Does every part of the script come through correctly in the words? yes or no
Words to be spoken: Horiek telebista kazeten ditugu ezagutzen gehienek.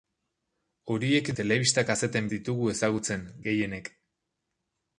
yes